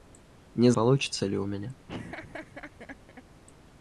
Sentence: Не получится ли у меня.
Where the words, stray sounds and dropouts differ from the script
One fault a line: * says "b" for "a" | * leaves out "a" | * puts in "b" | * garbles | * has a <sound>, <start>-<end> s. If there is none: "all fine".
* has a laugh, 1.9-3.2 s